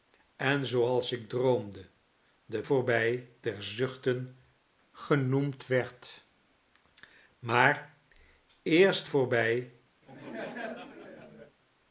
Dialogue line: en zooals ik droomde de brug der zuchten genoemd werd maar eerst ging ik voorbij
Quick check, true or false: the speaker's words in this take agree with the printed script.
false